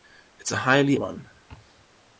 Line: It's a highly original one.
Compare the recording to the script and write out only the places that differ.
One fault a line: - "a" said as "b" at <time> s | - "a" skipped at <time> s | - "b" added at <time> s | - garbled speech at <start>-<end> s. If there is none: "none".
- "original" skipped at 1.0 s